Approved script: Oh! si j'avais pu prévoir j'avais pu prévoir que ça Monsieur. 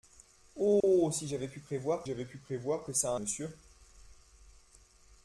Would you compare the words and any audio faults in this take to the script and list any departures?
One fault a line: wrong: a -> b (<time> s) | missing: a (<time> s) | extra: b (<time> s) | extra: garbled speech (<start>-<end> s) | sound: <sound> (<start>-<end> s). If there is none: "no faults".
sound: dropout (0.8-0.8 s)